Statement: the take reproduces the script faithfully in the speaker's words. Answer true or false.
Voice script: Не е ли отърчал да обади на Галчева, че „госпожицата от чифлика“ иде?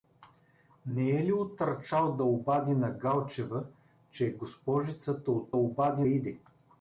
false